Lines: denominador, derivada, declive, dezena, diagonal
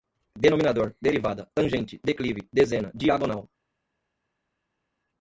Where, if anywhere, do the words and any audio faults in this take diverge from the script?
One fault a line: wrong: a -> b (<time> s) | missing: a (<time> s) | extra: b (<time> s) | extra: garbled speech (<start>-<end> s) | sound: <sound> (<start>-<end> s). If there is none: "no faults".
extra: tangente (1.5 s)